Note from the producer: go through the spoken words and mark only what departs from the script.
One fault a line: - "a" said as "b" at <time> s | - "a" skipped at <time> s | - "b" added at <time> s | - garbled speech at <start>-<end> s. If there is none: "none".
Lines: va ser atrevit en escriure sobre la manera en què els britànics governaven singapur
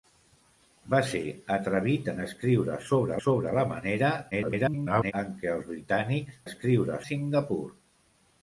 - "sobre" added at 3.2 s
- garbled speech at 4.3-5.1 s
- "governaven" said as "escriure" at 6.4 s